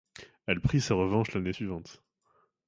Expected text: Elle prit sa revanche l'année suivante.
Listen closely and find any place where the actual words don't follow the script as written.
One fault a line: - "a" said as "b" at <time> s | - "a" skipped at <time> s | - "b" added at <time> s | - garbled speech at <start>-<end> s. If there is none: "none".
none